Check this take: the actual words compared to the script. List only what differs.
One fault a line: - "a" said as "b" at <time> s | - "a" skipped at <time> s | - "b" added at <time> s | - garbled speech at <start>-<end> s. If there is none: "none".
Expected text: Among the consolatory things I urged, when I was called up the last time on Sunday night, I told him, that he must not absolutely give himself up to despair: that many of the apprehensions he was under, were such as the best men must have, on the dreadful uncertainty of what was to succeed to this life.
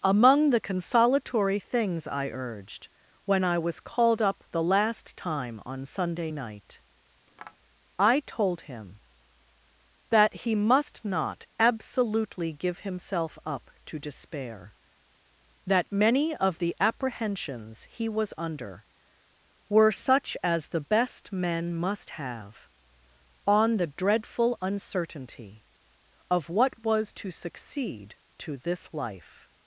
none